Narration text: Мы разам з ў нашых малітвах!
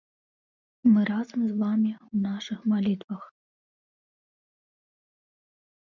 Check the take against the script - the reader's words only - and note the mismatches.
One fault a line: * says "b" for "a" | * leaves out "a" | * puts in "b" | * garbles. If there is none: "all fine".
* puts in "вамі"